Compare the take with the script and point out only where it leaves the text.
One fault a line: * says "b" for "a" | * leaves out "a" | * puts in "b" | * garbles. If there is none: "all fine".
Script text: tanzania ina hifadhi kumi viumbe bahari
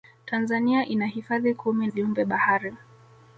all fine